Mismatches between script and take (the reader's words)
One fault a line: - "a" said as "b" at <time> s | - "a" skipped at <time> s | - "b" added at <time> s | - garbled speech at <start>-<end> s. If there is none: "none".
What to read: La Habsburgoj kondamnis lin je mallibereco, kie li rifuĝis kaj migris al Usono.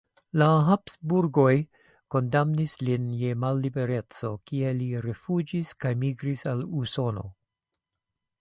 none